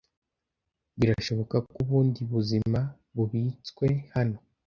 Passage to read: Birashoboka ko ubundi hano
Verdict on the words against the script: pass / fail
fail